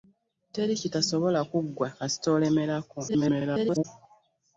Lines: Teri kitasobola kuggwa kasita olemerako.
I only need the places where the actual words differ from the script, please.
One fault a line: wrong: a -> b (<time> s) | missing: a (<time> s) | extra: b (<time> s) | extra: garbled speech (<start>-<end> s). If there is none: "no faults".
extra: garbled speech (3.1-3.9 s)